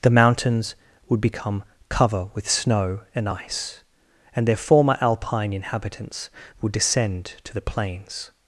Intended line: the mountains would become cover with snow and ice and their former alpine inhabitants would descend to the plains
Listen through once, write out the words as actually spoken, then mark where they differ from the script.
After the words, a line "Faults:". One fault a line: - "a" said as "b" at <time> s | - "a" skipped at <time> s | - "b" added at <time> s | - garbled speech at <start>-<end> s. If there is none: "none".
the mountains would become cover with snow and ice and their former alpine inhabitants would descend to the plains
Faults:
none